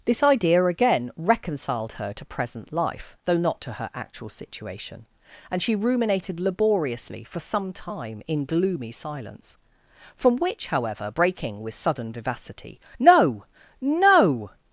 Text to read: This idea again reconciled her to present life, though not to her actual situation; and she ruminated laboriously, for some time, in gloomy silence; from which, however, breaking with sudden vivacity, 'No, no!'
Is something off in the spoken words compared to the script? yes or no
no